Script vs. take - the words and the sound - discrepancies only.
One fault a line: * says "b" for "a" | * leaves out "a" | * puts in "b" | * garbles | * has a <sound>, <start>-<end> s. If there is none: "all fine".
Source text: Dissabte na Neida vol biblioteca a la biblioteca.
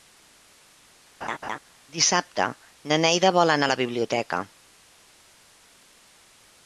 * has a laugh, 1.2-1.6 s
* says "anar" for "biblioteca"